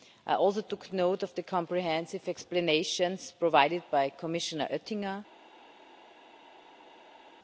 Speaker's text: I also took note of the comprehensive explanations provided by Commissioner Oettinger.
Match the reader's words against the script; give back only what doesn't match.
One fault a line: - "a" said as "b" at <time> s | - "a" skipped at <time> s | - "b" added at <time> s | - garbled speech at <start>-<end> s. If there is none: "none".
none